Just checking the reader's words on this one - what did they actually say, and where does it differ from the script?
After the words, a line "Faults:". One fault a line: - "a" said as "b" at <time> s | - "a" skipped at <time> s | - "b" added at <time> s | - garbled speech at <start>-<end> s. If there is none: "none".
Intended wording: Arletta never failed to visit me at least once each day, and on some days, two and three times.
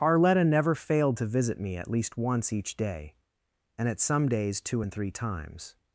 Arletta never failed to visit me at least once each day, and at some days, two and three times.
Faults:
- "on" said as "at" at 3.9 s